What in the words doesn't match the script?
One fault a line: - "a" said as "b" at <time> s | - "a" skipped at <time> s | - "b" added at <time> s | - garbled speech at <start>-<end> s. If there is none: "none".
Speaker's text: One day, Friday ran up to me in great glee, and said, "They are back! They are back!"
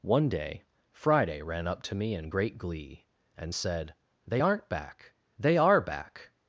- "are" said as "aren't" at 4.4 s